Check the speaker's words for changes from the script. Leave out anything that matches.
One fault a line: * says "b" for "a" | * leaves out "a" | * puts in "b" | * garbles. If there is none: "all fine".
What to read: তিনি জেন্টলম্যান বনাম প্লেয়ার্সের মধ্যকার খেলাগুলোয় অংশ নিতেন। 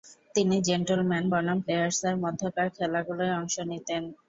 all fine